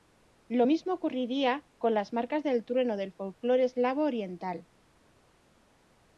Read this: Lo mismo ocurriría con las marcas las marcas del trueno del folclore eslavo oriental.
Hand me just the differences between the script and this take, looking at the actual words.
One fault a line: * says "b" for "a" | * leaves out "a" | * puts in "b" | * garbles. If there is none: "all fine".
* leaves out "las marcas"